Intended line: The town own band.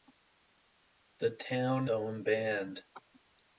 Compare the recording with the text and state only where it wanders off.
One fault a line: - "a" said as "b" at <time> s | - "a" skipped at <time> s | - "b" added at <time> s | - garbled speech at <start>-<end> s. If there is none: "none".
none